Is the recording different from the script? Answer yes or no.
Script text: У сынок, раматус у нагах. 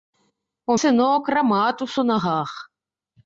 no